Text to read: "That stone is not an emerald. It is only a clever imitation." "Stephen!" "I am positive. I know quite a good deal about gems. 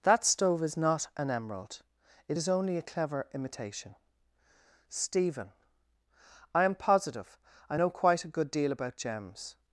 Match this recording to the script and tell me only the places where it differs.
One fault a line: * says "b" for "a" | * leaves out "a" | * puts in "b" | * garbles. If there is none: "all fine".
* says "stove" for "stone"